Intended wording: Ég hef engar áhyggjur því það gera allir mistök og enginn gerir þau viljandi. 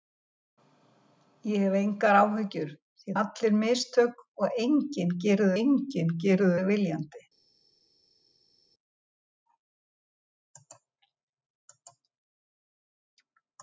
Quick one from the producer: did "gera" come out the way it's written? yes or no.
no